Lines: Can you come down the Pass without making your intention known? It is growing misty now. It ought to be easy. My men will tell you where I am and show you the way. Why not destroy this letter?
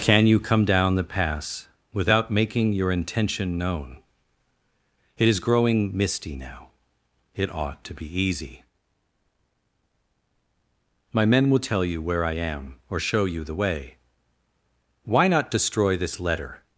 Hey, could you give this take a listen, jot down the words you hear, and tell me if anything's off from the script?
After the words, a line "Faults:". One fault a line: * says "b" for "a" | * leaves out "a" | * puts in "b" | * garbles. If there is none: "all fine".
Can you come down the Pass without making your intention known? It is growing misty now. It ought to be easy. My men will tell you where I am or show you the way. Why not destroy this letter?
Faults:
* says "or" for "and"